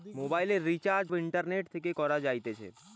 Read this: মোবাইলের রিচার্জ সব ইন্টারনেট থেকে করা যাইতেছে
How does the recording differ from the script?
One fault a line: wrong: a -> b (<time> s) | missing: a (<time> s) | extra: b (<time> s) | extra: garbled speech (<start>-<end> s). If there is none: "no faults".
missing: সব (1.1 s)